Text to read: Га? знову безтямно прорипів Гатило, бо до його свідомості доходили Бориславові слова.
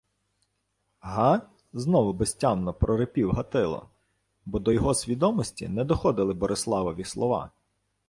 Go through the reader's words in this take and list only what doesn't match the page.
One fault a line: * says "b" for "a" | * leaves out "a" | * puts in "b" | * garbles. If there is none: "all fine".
* puts in "не"